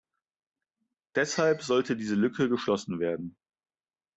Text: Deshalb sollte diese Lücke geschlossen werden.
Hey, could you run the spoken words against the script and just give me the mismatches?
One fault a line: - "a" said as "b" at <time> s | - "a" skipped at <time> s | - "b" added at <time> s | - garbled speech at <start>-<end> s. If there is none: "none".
none